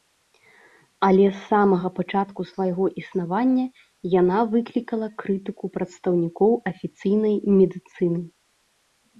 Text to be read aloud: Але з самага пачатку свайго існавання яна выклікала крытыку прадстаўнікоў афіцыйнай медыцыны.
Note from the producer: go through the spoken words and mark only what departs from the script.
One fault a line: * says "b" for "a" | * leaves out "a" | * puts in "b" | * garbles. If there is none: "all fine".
all fine